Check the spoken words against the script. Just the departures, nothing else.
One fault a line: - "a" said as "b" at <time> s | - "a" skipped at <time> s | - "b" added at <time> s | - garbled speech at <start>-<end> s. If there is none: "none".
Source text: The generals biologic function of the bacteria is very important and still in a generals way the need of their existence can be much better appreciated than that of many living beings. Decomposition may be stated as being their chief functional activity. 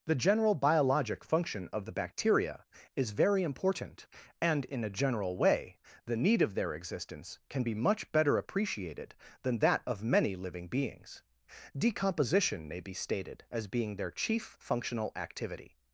- "generals" said as "general" at 0.2 s
- "still" skipped at 4.7 s
- "generals" said as "general" at 4.9 s